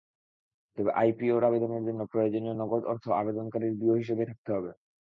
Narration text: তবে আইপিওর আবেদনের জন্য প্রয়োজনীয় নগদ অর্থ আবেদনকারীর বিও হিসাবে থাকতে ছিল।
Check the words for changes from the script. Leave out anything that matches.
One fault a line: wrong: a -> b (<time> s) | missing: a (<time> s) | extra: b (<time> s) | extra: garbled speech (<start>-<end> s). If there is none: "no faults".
wrong: ছিল -> হবে (4.5 s)